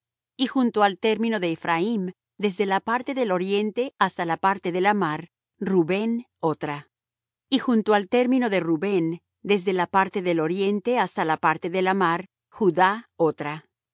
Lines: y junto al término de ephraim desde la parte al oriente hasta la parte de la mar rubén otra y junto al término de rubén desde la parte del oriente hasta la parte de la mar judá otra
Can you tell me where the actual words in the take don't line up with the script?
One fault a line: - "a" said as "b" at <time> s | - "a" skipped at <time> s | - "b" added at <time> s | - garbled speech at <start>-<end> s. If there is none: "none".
- "al" said as "del" at 3.1 s